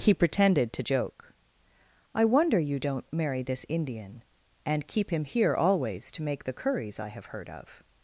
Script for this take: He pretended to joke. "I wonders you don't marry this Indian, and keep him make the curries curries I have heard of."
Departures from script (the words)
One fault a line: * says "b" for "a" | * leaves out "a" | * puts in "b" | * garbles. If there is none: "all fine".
* says "wonder" for "wonders"
* puts in "here always to"
* leaves out "curries"